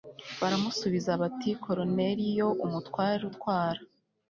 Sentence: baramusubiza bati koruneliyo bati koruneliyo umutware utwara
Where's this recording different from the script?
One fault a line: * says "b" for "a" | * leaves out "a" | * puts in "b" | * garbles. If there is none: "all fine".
* leaves out "bati koruneliyo"